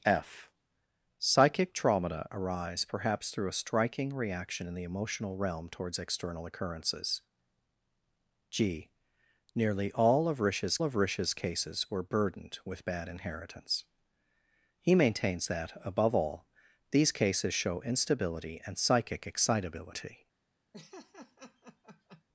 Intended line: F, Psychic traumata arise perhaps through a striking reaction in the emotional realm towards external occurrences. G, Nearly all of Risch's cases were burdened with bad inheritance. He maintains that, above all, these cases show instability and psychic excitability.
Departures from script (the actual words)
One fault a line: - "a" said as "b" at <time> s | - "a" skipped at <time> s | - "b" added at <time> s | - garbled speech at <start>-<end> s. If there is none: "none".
- "of Risch's" added at 10.8 s